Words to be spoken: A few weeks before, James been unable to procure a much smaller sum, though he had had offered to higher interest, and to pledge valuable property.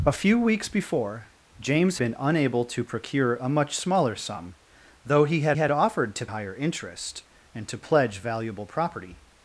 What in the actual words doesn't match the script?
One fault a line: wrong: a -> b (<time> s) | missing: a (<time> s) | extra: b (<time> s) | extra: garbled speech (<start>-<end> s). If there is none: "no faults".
no faults